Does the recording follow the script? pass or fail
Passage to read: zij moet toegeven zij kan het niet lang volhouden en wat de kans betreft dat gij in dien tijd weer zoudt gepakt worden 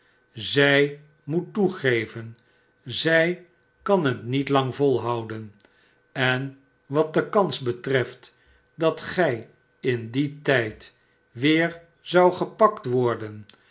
pass